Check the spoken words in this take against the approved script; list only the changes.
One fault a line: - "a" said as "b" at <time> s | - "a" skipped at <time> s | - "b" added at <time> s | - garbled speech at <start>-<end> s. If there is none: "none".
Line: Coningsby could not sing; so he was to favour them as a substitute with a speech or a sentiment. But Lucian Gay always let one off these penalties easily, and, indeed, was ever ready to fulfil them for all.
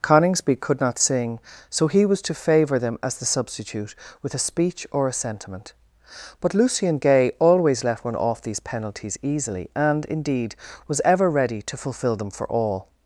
- "a" said as "the" at 3.2 s